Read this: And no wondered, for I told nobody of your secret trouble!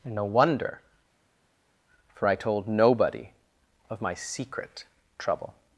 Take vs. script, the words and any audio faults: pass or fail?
fail